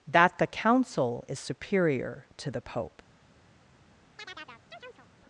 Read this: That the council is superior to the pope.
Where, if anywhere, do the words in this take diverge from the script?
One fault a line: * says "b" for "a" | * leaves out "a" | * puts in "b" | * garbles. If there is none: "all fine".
all fine